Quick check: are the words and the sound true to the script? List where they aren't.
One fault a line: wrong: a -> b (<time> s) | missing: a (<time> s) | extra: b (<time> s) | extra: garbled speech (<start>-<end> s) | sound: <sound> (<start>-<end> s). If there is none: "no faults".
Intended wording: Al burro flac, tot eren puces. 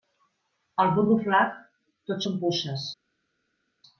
wrong: eren -> són (2.3 s)